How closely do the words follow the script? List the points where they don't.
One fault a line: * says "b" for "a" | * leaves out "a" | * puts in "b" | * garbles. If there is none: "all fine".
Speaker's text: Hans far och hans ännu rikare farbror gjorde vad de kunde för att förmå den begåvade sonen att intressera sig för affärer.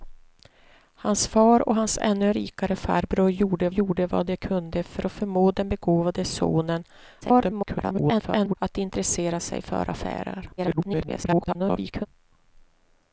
* puts in "gjorde"
* garbles
* garbles